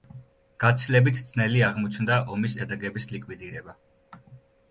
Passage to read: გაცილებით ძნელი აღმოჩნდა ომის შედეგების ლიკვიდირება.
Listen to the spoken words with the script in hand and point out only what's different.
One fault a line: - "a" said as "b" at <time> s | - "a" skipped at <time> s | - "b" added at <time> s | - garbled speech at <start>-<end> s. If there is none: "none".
none